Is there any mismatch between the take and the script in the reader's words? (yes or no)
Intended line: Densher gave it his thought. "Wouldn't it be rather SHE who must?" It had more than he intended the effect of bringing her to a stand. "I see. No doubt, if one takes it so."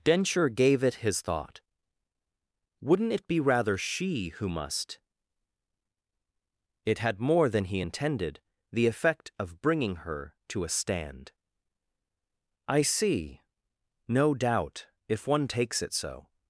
no